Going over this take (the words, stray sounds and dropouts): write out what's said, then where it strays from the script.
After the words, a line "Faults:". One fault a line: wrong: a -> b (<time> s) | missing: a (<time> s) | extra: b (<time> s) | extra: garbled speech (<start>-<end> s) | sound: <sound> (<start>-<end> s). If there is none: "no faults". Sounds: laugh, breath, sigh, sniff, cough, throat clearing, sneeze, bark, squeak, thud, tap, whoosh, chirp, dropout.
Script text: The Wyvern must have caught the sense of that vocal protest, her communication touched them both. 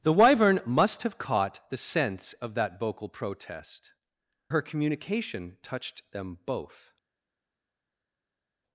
The Wyvern must have caught the sense of that vocal protest, her communication touched them both.
Faults:
no faults